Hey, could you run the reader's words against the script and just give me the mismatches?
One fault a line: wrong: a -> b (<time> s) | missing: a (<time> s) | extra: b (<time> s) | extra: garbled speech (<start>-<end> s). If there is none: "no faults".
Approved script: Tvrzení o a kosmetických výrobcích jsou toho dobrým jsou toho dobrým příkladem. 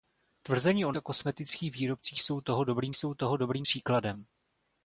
no faults